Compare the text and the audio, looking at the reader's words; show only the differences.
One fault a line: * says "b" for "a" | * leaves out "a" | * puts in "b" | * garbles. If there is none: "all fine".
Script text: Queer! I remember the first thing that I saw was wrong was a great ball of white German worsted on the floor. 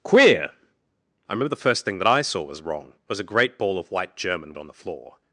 * leaves out "worsted"